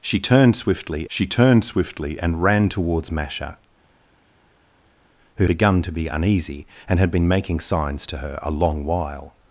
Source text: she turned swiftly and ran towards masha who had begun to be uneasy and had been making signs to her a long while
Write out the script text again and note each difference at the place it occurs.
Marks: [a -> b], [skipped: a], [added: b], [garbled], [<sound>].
she turned swiftly [added: she turned swiftly] and ran towards masha who [skipped: had] begun to be uneasy and had been making signs to her a long while